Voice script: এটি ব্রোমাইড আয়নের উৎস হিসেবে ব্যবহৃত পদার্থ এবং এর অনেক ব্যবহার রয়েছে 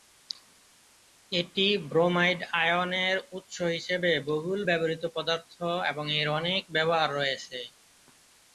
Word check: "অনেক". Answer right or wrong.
right